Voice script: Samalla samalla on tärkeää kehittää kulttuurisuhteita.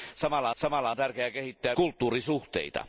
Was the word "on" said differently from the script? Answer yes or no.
no